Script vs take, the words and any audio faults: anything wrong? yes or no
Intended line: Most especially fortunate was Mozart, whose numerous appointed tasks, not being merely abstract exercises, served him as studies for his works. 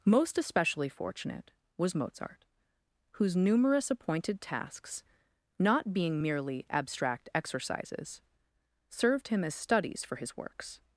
no